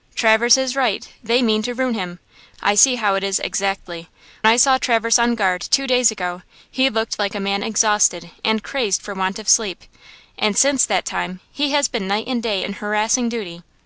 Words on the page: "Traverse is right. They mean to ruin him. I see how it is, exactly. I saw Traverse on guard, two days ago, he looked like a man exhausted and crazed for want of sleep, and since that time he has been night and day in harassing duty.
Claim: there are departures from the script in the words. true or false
false